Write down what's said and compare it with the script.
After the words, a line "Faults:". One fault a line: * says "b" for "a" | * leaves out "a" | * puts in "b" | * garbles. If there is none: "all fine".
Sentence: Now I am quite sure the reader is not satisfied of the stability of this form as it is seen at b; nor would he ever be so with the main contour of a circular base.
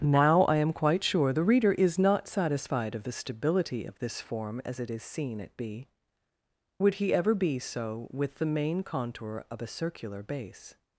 Now I am quite sure the reader is not satisfied of the stability of this form as it is seen at b; would he ever be so with the main contour of a circular base.
Faults:
* leaves out "nor"